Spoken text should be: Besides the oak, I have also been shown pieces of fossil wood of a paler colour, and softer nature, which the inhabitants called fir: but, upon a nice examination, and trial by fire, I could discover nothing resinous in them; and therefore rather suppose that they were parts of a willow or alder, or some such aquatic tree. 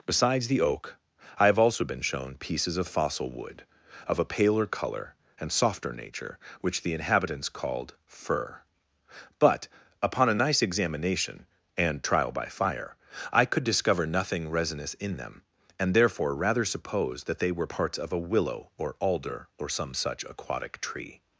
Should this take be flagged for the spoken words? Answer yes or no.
no